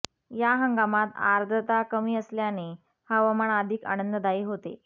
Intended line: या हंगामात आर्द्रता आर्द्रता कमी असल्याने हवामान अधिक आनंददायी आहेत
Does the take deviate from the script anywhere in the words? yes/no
yes